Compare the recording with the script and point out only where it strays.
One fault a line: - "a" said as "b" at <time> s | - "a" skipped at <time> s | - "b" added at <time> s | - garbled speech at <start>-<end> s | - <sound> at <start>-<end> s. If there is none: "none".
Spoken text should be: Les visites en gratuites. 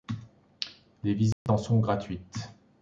- dropout at 1.3-1.5 s
- "sont" added at 1.6 s